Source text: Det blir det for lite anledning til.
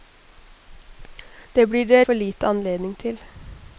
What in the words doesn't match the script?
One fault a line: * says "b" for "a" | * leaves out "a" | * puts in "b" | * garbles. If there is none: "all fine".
all fine